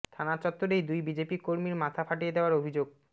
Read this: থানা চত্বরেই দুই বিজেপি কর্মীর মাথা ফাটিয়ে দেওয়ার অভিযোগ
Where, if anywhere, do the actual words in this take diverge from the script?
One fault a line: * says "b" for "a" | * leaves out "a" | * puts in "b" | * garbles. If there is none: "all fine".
all fine